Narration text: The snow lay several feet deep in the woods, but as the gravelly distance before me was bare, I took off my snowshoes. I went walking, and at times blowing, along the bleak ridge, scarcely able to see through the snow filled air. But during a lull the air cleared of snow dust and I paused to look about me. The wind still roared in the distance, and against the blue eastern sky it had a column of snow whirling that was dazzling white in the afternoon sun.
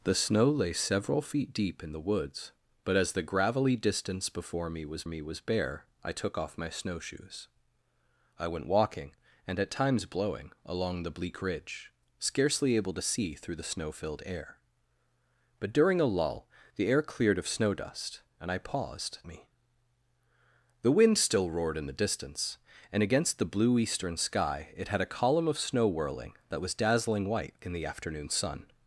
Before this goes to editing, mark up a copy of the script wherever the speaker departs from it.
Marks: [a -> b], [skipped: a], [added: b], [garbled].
The snow lay several feet deep in the woods, but as the gravelly distance before me was [added: me was] bare, I took off my snowshoes. I went walking, and at times blowing, along the bleak ridge, scarcely able to see through the snow filled air. But during a lull the air cleared of snow dust and I paused [skipped: to look about] me. The wind still roared in the distance, and against the blue eastern sky it had a column of snow whirling that was dazzling white in the afternoon sun.